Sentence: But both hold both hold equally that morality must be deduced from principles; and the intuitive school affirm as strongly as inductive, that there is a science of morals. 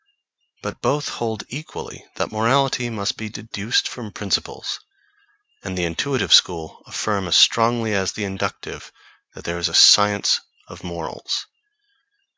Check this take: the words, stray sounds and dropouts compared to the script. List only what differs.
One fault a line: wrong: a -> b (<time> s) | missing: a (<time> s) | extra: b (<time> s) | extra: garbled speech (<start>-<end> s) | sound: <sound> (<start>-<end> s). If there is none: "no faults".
missing: both hold (1.4 s)
extra: the (8.1 s)